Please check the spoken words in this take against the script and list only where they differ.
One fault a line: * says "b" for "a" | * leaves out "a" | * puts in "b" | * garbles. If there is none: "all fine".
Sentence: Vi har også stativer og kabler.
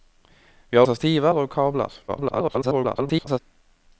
* leaves out "også"
* garbles